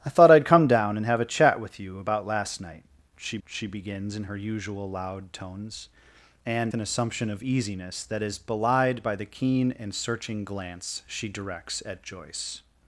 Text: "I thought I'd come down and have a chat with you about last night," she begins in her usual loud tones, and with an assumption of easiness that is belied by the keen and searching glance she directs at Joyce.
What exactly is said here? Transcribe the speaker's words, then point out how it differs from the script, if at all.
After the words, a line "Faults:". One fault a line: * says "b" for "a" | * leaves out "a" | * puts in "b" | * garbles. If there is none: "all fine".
"I thought I'd come down and have a chat with you about last night," she she begins in her usual loud tones, and an assumption of easiness that is belied by the keen and searching glance she directs at Joyce.
Faults:
* puts in "she"
* leaves out "with"